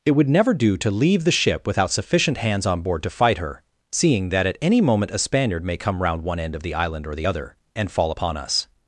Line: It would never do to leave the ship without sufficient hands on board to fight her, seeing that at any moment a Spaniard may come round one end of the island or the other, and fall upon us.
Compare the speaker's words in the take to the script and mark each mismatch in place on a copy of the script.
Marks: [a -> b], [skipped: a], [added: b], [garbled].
It would never do to leave the ship without sufficient hands on board to fight her, seeing that at any moment a Spaniard may come round one end of the island or the other, and fall upon us.